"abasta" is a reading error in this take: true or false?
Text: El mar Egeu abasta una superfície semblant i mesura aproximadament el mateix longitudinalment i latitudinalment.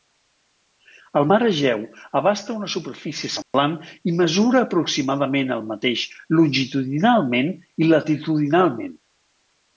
false